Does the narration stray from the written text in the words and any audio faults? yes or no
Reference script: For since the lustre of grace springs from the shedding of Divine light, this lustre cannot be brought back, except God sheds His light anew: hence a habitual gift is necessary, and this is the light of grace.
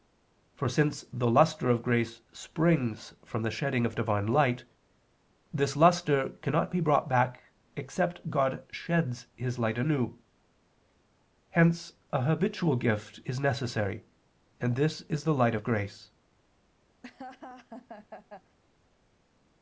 yes